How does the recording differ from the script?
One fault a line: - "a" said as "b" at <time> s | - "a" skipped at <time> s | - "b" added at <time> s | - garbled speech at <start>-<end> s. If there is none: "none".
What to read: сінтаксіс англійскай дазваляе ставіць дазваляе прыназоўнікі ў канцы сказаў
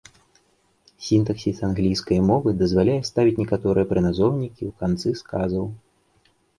- "мовы" added at 2.3 s
- "дазваляе" said as "некаторыя" at 3.4 s